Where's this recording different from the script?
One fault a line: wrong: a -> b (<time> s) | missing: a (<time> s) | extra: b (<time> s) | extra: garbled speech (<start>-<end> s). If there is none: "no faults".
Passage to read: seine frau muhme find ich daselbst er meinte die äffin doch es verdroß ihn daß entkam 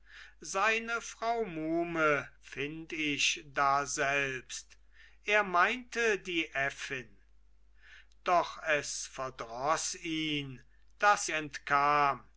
no faults